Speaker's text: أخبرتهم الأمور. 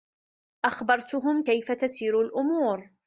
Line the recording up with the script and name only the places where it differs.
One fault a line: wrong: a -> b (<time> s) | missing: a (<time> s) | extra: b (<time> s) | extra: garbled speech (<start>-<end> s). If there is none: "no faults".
extra: كيف تسير (1.4 s)